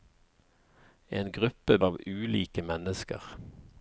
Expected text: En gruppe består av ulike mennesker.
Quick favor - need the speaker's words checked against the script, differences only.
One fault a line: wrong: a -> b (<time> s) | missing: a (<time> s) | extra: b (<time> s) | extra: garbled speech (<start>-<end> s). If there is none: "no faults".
missing: består (1.8 s)